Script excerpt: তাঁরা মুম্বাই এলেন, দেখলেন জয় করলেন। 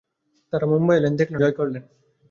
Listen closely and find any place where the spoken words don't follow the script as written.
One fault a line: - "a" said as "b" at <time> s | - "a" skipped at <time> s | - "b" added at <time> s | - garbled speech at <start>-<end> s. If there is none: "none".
none